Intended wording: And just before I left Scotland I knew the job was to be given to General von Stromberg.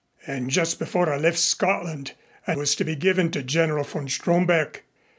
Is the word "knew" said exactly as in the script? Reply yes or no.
no